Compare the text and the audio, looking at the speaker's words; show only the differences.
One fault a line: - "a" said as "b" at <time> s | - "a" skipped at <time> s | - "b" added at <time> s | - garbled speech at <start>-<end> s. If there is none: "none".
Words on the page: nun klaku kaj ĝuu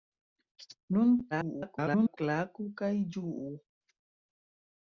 - garbled speech at 1.3-2.2 s